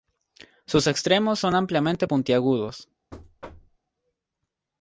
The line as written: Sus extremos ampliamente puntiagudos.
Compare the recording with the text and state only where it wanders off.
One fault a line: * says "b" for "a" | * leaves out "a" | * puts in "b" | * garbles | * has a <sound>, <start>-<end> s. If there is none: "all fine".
* puts in "son"
* has a thud, 3.1-3.8 s